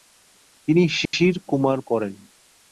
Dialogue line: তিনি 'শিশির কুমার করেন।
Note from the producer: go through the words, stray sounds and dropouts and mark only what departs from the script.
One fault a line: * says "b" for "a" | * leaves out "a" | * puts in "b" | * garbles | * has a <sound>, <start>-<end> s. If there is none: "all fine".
* has a dropout, 1.1-1.1 s